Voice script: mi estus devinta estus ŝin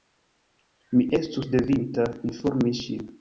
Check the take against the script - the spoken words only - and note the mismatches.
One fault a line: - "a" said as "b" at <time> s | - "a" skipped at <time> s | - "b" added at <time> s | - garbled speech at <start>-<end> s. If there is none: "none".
- "estus" said as "informi" at 2.3 s